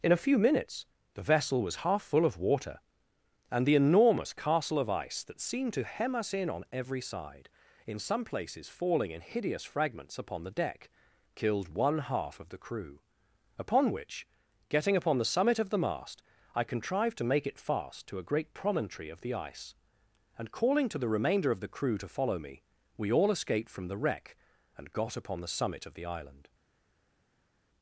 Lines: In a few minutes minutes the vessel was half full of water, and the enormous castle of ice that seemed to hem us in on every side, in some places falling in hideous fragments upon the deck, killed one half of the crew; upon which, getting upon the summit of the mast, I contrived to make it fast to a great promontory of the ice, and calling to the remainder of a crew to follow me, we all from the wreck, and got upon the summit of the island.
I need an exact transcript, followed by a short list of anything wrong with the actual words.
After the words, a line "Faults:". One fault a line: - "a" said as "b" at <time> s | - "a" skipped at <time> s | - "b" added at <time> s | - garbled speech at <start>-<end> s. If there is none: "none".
In a few minutes the vessel was half full of water, and the enormous castle of ice that seemed to hem us in on every side, in some places falling in hideous fragments upon the deck, killed one half of the crew; upon which, getting upon the summit of the mast, I contrived to make it fast to a great promontory of the ice, and calling to the remainder of the crew to follow me, we all escaped from the wreck, and got upon the summit of the island.
Faults:
- "minutes" skipped at 0.9 s
- "a" said as "the" at 21.6 s
- "escaped" added at 23.3 s